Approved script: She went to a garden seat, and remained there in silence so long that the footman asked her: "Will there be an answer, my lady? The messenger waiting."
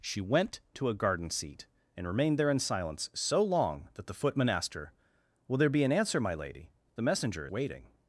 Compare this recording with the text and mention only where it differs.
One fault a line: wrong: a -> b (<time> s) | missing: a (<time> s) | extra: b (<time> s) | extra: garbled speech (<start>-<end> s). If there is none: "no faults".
no faults